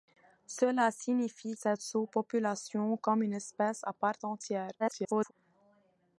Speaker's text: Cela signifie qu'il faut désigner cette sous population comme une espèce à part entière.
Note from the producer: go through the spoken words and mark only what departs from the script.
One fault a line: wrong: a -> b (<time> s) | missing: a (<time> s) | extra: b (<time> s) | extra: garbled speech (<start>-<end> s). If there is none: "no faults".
missing: qu'il faut désigner (1.6 s)
extra: garbled speech (4.8-5.3 s)